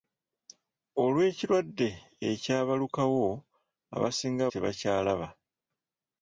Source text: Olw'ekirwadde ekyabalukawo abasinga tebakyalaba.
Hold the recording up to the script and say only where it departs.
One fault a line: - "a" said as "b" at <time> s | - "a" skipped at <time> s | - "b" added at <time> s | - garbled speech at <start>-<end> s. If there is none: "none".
none